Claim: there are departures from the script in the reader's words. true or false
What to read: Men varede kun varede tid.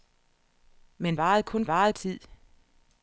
false